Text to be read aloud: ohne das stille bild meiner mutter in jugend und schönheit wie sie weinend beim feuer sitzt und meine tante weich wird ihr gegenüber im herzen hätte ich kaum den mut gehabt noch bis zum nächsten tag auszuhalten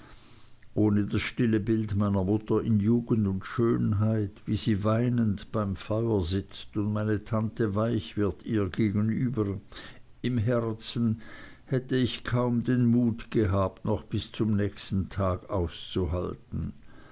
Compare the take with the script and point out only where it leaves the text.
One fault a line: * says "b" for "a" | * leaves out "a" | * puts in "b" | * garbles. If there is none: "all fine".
all fine